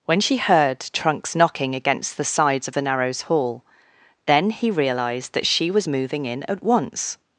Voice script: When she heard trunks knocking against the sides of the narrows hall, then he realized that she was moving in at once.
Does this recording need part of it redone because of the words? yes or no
no